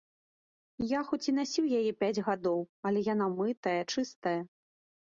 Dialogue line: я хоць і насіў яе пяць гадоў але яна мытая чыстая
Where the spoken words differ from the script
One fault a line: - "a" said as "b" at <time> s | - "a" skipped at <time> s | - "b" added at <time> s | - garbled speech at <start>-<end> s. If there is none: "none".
none